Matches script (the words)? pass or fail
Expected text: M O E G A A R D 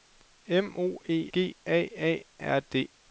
pass